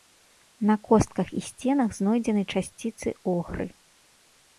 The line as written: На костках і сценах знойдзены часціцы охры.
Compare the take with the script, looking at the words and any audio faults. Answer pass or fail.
pass